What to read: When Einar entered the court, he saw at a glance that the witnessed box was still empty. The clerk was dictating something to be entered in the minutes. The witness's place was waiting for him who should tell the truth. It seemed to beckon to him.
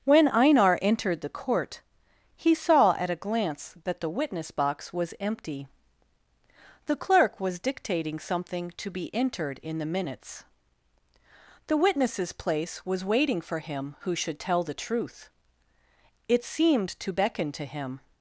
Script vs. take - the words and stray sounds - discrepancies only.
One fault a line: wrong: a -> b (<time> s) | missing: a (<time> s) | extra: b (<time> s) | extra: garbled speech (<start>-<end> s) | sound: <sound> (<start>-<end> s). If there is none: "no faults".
wrong: witnessed -> witness (4.1 s)
missing: still (5.1 s)